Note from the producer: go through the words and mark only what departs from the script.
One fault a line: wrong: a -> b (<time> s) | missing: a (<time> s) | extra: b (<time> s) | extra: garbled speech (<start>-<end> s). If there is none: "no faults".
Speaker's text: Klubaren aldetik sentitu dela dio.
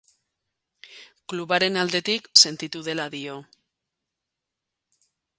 no faults